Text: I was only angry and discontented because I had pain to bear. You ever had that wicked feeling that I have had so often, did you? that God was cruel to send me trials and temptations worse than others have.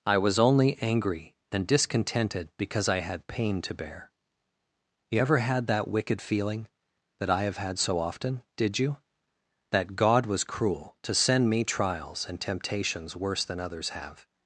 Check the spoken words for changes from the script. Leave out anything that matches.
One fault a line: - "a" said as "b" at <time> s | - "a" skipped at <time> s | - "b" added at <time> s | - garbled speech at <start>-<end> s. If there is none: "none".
none